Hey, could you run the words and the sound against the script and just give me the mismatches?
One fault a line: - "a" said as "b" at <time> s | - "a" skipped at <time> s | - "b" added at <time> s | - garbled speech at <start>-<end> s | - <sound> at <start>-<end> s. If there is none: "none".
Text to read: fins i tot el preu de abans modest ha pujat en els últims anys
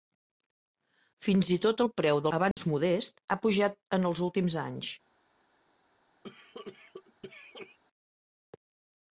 - dropout at 2.5-2.6 s
- cough at 6.2-7.8 s